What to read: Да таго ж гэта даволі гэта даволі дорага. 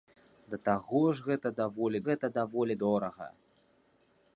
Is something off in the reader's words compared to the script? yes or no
no